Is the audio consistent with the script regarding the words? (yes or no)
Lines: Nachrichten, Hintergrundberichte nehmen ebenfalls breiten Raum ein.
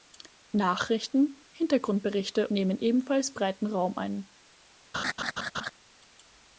yes